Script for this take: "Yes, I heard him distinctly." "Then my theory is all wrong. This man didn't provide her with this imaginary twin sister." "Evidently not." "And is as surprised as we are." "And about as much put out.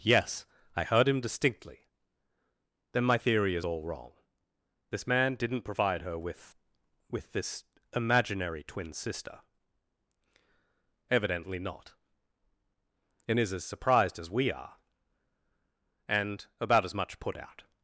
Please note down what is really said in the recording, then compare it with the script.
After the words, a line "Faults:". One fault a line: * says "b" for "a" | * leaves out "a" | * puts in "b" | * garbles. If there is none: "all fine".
"Yes, I heard him distinctly." "Then my theory is all wrong. This man didn't provide her with with this imaginary twin sister." "Evidently not." "And is as surprised as we are." "And about as much put out.
Faults:
* puts in "with"